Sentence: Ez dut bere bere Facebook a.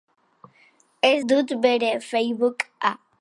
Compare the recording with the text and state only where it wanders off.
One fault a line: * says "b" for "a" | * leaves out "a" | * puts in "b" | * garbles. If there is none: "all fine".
* leaves out "bere"